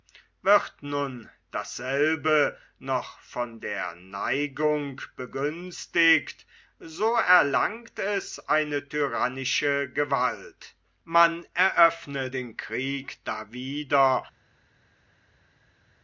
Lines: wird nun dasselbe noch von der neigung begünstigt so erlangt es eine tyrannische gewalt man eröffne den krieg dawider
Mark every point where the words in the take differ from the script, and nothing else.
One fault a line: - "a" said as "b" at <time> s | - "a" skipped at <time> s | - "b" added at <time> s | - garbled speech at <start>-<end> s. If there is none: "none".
none